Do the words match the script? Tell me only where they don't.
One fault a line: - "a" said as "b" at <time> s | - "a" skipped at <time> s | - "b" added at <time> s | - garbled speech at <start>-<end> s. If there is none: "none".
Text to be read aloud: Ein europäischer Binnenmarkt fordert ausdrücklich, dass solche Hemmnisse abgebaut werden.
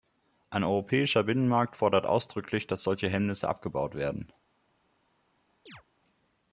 none